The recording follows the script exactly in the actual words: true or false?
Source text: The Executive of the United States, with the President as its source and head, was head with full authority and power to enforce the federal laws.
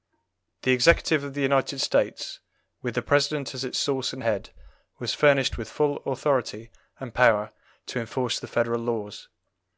false